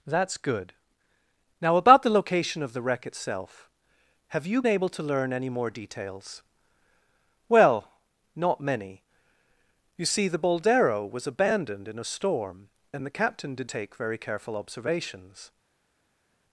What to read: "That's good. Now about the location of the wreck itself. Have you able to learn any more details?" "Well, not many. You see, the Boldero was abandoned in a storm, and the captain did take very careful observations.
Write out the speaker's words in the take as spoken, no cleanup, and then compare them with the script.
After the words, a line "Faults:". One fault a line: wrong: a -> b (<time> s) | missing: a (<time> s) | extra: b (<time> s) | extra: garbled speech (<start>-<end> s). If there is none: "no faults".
"That's good. Now about the location of the wreck itself. Have you able to learn any more details?" "Well, not many. You see, the Boldero was abandoned in a storm, and the captain did take very careful observations.
Faults:
no faults